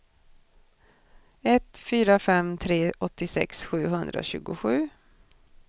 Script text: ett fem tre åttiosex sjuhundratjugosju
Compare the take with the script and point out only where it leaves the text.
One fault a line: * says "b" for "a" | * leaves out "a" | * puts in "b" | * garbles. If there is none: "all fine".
* puts in "fyra"